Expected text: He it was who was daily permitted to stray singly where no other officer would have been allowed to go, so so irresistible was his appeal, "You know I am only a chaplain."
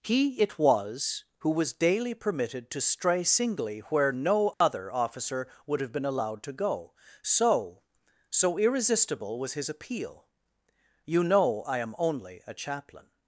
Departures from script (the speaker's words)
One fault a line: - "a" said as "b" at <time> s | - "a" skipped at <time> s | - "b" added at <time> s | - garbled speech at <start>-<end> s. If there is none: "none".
none